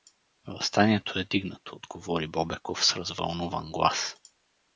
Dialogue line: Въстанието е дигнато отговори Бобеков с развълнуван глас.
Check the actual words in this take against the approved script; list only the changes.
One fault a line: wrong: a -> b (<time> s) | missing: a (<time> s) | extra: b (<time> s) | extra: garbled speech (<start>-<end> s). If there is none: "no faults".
no faults